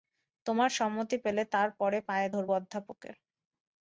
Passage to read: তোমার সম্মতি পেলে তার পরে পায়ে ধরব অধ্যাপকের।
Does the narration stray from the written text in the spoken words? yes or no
no